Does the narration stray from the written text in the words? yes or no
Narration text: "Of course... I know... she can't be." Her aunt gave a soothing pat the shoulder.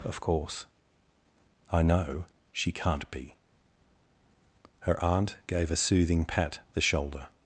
no